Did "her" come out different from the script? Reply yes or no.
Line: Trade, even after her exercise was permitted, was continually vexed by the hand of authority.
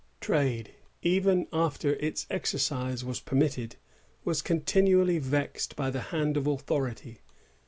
yes